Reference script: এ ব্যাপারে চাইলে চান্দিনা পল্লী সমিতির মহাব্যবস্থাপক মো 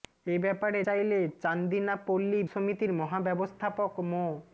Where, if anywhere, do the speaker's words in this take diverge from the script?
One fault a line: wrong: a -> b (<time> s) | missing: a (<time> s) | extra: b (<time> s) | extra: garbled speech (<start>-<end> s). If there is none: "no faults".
no faults